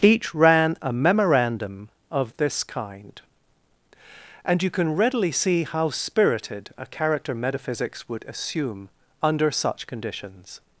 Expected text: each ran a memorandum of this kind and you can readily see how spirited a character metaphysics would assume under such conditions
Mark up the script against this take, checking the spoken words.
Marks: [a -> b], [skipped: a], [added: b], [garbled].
each ran a memorandum of this kind and you can readily see how spirited a character metaphysics would assume under such conditions